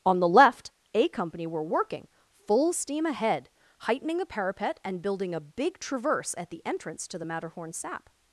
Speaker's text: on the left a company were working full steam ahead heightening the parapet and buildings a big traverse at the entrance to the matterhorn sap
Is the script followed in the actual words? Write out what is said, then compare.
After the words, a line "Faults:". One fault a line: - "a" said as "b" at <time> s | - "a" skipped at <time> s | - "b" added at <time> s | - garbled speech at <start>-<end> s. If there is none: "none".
on the left a company were working full steam ahead heightening the parapet and building a big traverse at the entrance to the matterhorn sap
Faults:
- "buildings" said as "building" at 5.0 s